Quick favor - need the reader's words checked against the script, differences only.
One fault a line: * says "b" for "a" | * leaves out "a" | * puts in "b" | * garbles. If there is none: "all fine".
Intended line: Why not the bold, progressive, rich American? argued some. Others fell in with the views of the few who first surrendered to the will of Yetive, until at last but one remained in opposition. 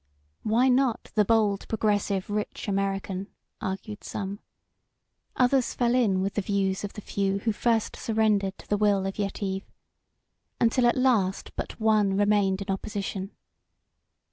all fine